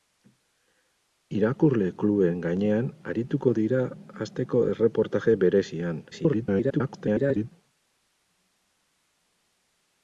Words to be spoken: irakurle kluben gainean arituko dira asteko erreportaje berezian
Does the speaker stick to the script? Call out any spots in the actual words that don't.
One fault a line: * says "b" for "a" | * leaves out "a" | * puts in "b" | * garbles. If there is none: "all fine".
* garbles